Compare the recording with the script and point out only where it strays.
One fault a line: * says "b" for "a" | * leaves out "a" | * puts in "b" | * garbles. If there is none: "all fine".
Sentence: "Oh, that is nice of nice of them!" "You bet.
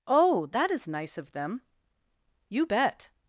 * leaves out "nice of"